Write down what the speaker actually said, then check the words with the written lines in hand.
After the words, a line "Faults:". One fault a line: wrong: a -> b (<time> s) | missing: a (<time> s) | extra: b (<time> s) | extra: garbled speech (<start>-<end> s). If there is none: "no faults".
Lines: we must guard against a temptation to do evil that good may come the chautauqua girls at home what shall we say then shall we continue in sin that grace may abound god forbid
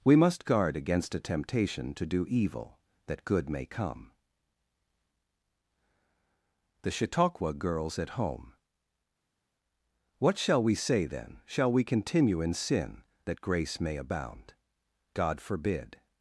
we must guard against a temptation to do evil that good may come the chautauqua girls at home what shall we say then shall we continue in sin that grace may abound god forbid
Faults:
no faults